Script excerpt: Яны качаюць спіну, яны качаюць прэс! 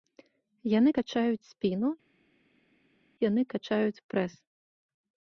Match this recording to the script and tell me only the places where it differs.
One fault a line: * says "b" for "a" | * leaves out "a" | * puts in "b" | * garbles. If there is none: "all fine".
all fine